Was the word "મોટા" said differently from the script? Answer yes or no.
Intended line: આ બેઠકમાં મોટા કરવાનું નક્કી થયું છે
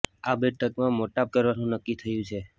no